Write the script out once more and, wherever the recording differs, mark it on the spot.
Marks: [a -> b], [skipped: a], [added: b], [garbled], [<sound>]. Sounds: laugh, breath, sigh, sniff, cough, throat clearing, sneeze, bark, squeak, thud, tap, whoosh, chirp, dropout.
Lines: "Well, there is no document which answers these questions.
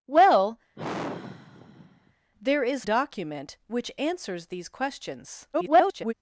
"Well, [sigh] there is [skipped: no] document which answers these questions. [garbled]